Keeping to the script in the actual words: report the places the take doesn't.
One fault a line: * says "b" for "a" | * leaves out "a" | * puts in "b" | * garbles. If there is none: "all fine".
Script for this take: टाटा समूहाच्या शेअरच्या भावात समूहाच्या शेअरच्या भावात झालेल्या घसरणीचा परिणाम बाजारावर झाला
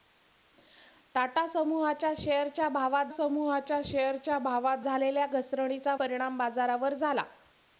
all fine